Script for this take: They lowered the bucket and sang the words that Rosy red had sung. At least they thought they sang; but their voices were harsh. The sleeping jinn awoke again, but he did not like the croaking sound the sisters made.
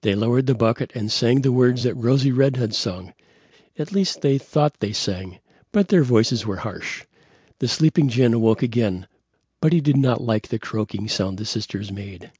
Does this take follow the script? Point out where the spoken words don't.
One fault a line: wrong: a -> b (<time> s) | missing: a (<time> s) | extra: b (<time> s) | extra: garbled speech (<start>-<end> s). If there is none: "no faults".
no faults